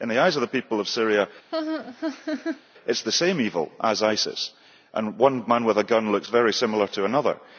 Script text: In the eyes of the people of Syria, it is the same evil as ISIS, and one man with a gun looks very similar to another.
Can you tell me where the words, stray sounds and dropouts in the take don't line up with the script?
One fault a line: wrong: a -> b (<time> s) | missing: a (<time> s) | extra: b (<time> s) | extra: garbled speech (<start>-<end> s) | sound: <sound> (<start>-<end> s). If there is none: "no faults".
sound: laugh (1.5-2.6 s)